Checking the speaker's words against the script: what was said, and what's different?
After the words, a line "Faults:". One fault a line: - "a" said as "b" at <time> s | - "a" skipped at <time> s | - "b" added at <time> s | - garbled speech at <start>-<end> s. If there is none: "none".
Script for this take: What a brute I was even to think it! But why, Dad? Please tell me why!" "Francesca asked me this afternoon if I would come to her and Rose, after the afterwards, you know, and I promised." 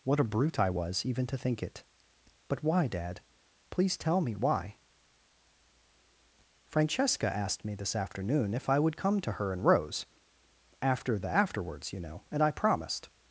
What a brute I was even to think it! But why, Dad? Please tell me why!" "Francesca asked me this afternoon if I would come to her and Rose, after the afterwards, you know, and I promised."
Faults:
none